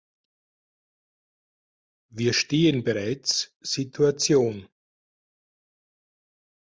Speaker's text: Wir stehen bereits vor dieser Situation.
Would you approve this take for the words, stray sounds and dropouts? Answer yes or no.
no